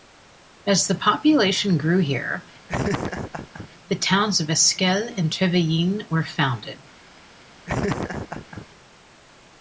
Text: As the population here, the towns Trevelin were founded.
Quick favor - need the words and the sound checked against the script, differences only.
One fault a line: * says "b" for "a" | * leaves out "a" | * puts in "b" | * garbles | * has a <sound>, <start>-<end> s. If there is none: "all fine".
* puts in "grew"
* has a laugh, 2.7-3.7 s
* puts in "of Esquel and"
* has a laugh, 7.7-8.7 s